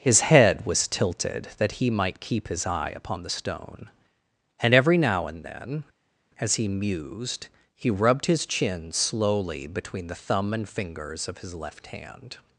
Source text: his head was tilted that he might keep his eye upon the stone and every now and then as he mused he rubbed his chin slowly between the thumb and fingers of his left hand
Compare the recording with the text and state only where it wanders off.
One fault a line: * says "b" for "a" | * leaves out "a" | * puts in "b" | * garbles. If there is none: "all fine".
all fine